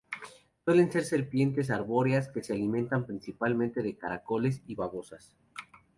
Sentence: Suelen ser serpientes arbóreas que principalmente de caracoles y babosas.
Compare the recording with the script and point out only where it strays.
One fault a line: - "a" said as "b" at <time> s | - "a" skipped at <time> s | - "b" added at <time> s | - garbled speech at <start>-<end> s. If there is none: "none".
- "se alimentan" added at 2.4 s